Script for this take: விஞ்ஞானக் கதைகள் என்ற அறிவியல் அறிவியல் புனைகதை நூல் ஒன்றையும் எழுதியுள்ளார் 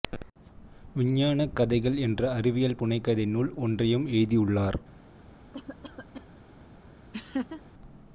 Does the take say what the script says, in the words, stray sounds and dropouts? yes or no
no